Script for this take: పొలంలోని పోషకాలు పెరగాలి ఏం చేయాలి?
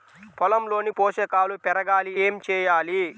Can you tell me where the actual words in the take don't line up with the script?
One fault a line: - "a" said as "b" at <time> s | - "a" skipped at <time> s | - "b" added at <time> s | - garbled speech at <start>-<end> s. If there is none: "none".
none